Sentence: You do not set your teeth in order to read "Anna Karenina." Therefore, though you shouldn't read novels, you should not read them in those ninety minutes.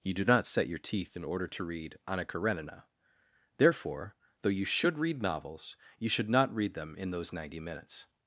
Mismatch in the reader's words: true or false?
true